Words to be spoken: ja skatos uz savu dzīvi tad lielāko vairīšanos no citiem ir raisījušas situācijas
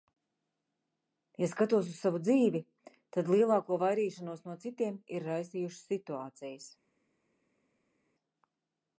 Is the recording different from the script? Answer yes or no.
no